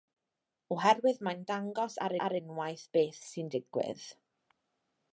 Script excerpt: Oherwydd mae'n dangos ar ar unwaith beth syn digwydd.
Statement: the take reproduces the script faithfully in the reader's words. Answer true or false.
true